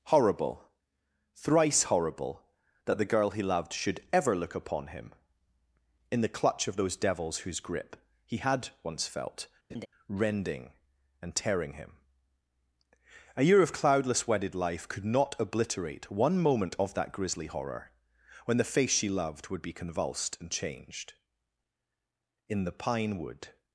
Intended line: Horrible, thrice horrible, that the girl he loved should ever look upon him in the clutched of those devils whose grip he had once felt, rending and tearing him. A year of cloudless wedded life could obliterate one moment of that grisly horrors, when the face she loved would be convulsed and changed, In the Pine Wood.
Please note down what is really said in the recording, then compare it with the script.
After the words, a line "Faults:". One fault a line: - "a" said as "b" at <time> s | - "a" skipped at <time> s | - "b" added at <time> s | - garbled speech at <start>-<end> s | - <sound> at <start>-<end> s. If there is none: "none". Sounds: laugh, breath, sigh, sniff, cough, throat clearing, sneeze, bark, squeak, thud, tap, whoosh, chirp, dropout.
Horrible, thrice horrible, that the girl he loved should ever look upon him in the clutch of those devils whose grip he had once felt, rending and tearing him. A year of cloudless wedded life could not obliterate one moment of that grisly horror, when the face she loved would be convulsed and changed, In the Pine Wood.
Faults:
- "clutched" said as "clutch" at 6.3 s
- laugh at 9.7-9.9 s
- "not" added at 15.0 s
- "horrors" said as "horror" at 17.5 s